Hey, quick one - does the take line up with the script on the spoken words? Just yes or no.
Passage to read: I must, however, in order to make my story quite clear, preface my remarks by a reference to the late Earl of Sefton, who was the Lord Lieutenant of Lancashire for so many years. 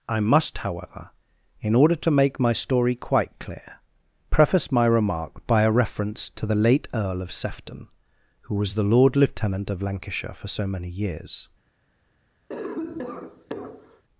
no